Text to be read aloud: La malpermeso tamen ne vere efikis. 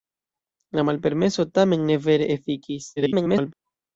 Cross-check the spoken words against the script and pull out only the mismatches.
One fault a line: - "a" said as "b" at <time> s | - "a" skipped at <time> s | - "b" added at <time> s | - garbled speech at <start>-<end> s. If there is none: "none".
- garbled speech at 3.0-3.5 s